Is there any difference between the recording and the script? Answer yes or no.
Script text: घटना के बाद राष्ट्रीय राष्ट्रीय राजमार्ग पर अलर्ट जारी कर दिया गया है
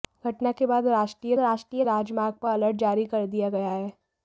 no